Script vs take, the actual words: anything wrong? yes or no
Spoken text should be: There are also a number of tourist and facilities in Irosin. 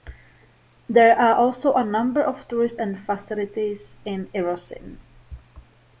no